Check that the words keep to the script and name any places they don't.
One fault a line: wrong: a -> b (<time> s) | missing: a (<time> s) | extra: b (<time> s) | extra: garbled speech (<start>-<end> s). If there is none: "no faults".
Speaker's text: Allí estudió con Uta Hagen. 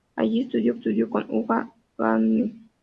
extra: estudió (0.7 s)